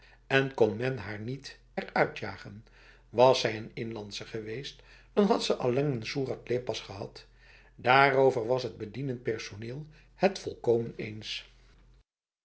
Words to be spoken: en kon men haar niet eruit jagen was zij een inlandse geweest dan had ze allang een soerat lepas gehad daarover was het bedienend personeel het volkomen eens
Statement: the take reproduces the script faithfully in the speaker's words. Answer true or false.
true